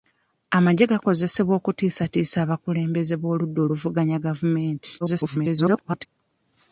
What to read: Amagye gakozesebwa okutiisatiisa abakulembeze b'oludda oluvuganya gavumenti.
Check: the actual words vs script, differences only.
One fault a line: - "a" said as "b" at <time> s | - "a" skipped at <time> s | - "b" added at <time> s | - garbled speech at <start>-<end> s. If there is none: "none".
- garbled speech at 5.0-6.1 s